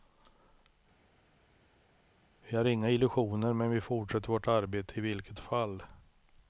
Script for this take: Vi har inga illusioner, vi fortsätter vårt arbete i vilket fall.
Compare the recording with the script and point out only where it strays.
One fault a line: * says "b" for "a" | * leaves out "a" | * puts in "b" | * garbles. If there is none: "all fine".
* puts in "men"